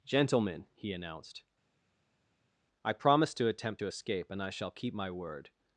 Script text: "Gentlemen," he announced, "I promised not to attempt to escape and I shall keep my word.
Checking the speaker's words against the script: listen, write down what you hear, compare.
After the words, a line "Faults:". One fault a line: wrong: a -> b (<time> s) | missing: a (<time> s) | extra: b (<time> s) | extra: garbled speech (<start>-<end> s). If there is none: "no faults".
"Gentlemen," he announced, "I promised to attempt to escape and I shall keep my word.
Faults:
missing: not (3.4 s)